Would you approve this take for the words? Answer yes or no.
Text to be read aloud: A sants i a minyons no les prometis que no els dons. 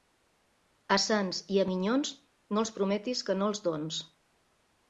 no